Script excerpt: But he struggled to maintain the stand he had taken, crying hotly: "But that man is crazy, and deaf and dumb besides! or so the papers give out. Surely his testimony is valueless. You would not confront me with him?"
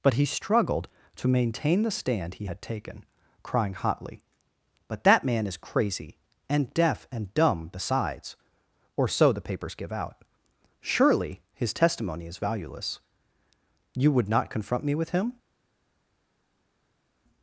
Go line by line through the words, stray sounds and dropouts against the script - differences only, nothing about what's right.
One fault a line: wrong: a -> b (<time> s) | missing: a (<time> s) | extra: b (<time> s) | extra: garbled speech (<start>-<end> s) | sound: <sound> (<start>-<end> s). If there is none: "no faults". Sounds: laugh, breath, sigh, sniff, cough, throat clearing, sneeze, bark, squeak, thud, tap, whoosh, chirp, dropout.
no faults